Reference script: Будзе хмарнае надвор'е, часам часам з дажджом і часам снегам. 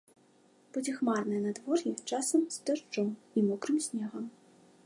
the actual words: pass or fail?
fail